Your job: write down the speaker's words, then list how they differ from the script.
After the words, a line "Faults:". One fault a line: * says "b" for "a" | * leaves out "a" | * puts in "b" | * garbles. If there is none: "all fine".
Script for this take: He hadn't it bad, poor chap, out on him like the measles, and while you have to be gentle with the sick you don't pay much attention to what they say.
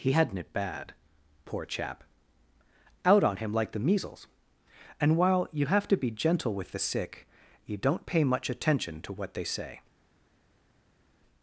He hadn't it bad, poor chap, out on him like the measles, and while you have to be gentle with the sick you don't pay much attention to what they say.
Faults:
all fine